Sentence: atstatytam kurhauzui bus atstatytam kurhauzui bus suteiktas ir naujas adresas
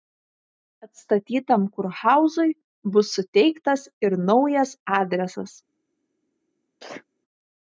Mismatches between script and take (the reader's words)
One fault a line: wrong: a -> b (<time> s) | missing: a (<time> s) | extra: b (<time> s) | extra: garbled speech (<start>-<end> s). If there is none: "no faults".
missing: atstatytam kurhauzui bus (3.1 s)